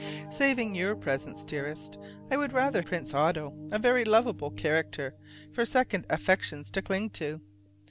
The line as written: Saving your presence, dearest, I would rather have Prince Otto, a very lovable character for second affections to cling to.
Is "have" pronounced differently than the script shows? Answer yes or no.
yes